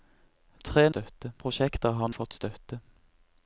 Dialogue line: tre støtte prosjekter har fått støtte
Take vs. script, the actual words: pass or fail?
pass